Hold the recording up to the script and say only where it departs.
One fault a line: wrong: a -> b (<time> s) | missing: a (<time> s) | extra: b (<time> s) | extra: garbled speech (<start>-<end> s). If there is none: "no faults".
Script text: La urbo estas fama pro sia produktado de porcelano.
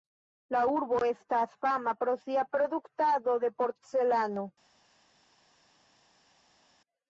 no faults